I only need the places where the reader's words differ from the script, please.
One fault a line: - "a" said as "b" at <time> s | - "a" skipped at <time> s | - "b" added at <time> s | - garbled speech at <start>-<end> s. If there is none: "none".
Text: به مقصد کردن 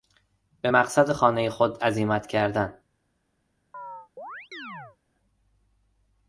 - "خانهی خود عزیمت" added at 1.1 s